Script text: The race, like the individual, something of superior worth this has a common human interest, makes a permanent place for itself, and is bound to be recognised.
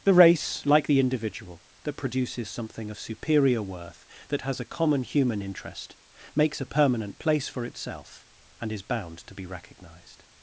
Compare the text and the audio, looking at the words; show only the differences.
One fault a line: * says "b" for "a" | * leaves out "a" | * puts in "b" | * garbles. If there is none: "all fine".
* puts in "that produces"
* says "that" for "this"